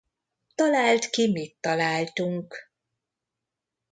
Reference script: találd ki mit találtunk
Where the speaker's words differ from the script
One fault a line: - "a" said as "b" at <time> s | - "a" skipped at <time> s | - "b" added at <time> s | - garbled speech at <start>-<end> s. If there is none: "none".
none